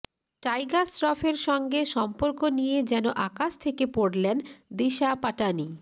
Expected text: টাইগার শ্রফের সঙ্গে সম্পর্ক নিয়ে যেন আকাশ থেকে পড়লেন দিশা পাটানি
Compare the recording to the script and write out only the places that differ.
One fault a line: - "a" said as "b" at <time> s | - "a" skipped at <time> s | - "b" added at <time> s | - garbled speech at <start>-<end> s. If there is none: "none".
none